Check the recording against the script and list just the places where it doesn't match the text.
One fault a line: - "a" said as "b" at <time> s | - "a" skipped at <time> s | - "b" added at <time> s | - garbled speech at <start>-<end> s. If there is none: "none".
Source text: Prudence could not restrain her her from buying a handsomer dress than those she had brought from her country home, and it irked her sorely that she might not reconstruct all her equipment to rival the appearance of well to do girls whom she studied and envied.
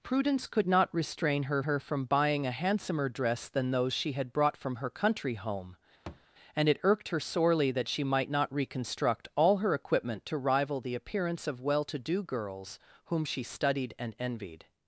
none